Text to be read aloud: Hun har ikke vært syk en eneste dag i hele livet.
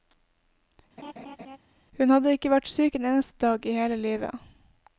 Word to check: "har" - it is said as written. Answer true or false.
false